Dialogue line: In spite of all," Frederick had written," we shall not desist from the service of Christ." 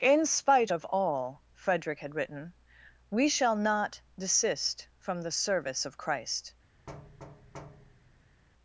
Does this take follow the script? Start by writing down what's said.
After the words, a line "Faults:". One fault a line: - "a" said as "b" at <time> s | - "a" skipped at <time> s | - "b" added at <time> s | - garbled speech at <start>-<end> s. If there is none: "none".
In spite of all," Frederick had written," we shall not desist from the service of Christ."
Faults:
none